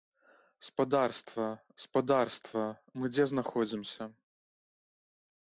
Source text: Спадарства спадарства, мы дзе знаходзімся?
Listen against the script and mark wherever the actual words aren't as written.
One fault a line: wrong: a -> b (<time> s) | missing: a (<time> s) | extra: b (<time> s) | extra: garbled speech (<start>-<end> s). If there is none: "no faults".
no faults